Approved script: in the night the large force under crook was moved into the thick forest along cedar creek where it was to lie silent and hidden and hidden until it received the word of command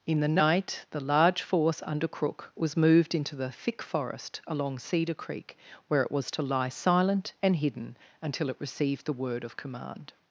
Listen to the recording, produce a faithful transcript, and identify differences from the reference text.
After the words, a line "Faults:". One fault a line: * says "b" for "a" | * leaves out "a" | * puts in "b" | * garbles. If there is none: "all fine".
in the night the large force under crook was moved into the thick forest along cedar creek where it was to lie silent and hidden until it received the word of command
Faults:
* leaves out "and hidden"